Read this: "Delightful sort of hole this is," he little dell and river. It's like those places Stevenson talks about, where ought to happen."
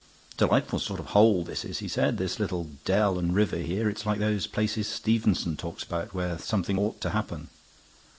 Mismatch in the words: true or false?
true